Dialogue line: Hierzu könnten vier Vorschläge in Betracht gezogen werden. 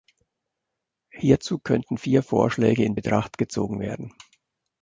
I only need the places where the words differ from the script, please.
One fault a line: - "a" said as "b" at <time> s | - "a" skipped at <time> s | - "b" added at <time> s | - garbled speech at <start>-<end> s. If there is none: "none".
none